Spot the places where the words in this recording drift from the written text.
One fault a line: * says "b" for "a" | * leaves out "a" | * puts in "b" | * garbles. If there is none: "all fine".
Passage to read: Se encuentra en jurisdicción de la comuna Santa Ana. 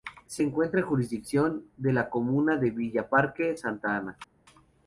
* puts in "de Villa Parque"